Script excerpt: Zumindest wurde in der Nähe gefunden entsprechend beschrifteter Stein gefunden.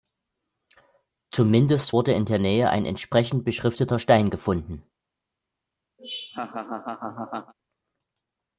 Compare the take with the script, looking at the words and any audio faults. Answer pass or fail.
fail